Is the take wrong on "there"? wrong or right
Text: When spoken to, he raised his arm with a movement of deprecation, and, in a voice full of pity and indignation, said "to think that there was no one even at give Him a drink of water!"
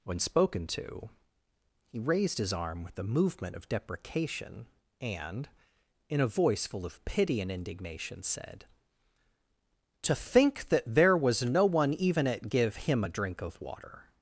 right